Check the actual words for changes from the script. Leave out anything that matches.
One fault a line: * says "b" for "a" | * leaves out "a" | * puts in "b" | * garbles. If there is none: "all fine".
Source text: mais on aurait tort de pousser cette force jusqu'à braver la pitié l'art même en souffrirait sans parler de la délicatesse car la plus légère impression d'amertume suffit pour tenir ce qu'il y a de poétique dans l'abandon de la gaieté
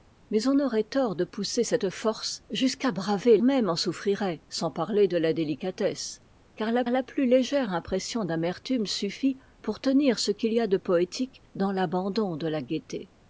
* leaves out "la pitié l'art"
* puts in "la"